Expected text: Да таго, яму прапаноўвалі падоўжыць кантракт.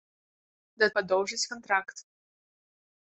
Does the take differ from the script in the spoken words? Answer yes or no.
yes